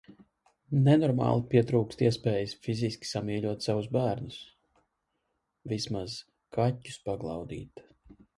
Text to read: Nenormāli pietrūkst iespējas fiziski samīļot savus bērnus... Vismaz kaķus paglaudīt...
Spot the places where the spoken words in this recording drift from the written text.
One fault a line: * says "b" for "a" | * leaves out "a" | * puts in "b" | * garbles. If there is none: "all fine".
all fine